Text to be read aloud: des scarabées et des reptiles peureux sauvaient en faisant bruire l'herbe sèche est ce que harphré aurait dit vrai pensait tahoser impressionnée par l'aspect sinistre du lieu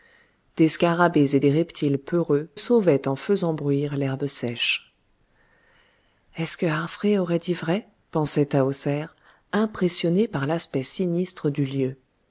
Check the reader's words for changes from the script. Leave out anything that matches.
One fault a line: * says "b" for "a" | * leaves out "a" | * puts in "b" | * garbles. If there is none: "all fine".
all fine